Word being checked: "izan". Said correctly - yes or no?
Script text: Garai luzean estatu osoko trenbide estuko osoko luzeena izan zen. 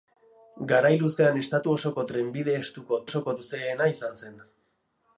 yes